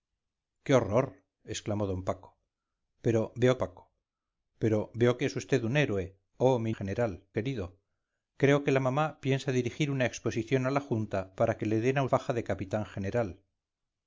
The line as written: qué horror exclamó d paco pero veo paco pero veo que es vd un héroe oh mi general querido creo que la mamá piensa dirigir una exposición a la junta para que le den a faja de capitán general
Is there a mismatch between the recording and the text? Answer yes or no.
no